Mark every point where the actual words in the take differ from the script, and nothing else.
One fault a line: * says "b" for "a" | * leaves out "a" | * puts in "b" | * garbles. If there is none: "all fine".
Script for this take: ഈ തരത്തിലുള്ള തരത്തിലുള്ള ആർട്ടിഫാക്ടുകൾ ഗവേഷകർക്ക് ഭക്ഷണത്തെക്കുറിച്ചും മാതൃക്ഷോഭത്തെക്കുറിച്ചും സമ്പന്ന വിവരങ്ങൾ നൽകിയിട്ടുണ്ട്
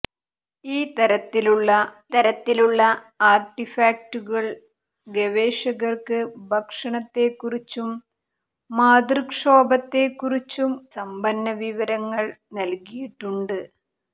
all fine